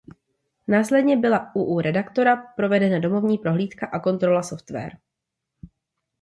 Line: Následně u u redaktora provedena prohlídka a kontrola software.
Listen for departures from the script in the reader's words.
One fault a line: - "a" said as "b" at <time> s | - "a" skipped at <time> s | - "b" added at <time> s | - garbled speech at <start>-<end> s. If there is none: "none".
- "byla" added at 1.2 s
- "domovní" added at 3.0 s